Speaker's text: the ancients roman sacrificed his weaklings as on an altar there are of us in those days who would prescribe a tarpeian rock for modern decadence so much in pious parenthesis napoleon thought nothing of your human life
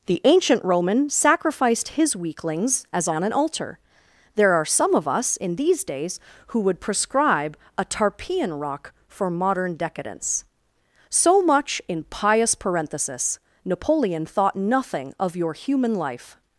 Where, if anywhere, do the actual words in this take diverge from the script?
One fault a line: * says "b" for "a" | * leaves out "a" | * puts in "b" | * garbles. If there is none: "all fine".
* says "ancient" for "ancients"
* puts in "some"
* says "these" for "those"